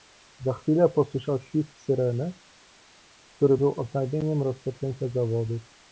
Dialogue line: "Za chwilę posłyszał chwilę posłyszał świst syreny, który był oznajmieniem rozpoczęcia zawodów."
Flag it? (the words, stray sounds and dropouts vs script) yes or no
yes